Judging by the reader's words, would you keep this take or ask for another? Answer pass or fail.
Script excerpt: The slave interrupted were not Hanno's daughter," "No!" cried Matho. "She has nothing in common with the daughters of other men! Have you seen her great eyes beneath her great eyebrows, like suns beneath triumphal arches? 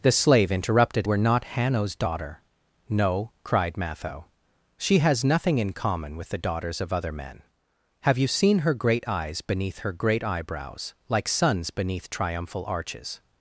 pass